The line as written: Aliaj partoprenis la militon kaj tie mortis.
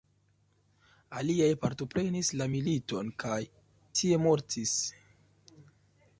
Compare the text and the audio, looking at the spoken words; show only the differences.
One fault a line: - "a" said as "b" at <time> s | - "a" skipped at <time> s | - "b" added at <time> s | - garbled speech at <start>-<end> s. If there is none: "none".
none